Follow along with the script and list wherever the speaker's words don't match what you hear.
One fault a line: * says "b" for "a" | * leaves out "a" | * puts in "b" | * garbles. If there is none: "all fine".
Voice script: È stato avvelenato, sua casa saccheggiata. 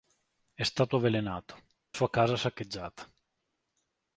all fine